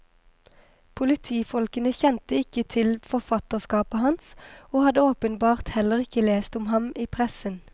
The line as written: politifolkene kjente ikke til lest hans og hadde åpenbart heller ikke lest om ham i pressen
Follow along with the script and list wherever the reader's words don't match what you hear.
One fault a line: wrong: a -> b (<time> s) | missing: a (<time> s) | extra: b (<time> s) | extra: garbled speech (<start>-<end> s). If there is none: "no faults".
wrong: lest -> forfatterskapet (3.0 s)